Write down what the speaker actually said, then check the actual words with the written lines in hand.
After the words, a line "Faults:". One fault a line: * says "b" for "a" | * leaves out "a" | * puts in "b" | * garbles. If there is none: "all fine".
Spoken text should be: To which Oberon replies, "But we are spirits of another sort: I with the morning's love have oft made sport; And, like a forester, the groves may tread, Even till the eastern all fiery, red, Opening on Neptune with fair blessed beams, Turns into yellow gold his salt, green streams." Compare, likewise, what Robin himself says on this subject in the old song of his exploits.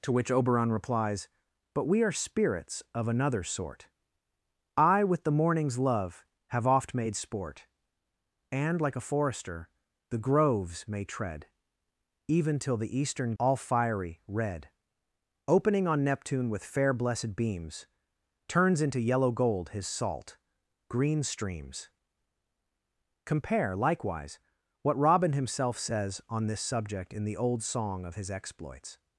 To which Oberon replies, "But we are spirits of another sort: I with the morning's love have oft made sport; And, like a forester, the groves may tread, Even till the eastern all fiery, red, Opening on Neptune with fair blessed beams, Turns into yellow gold his salt, green streams." Compare, likewise, what Robin himself says on this subject in the old song of his exploits.
Faults:
all fine